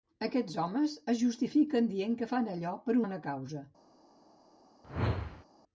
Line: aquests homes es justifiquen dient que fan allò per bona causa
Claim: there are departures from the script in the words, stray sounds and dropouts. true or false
true